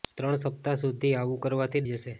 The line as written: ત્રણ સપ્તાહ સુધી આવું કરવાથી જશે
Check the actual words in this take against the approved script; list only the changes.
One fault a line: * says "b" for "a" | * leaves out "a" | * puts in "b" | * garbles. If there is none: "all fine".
all fine